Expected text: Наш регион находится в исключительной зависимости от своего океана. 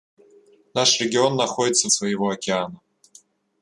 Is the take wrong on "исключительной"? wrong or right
wrong